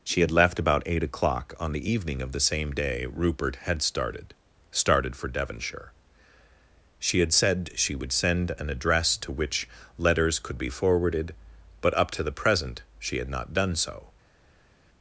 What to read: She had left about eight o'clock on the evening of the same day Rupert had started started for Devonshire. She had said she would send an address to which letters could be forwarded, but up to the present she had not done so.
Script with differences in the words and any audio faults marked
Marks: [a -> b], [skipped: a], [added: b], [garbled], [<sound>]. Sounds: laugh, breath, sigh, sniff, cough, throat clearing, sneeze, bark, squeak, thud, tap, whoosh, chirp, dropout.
She had left about eight o'clock on the evening of the same day Rupert had started started for Devonshire. She had said she would send an address to which letters could be forwarded, but up to the present she had not done so.